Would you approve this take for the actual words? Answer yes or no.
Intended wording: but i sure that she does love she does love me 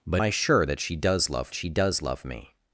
yes